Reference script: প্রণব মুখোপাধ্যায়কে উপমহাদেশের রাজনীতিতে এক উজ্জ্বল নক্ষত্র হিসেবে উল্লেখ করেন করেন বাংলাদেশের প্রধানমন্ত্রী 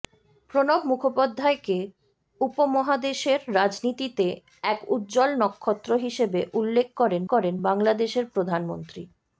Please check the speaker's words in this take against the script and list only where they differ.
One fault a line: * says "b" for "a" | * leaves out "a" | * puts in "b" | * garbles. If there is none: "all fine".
all fine